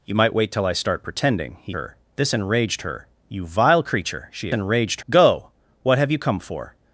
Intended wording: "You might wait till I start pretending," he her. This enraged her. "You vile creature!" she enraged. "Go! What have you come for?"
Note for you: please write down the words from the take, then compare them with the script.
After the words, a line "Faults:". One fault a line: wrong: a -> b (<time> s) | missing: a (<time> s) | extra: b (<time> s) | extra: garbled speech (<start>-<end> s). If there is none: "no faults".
"You might wait till I start pretending," he her. This enraged her. "You vile creature!" she enraged. "Go! What have you come for?"
Faults:
no faults